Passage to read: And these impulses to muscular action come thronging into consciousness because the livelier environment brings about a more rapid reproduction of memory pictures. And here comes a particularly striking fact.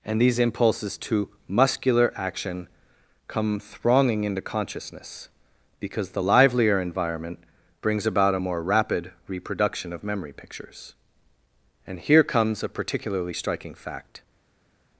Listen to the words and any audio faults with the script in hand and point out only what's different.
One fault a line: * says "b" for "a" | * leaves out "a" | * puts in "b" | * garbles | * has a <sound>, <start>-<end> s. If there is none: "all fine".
all fine